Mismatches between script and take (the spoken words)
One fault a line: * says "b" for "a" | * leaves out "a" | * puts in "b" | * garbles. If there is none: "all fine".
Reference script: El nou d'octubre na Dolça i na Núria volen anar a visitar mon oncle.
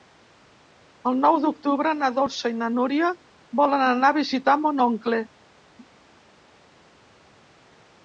all fine